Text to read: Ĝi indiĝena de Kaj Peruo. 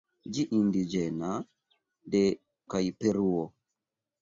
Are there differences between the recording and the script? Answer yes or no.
no